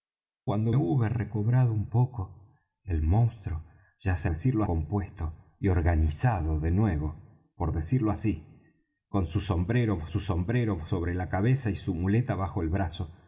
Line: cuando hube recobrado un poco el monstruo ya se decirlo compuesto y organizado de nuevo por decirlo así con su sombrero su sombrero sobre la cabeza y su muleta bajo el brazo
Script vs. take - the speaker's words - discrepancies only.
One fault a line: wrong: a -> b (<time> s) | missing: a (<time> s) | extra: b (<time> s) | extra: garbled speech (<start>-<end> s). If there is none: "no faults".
no faults